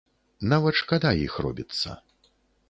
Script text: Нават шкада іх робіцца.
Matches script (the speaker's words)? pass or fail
pass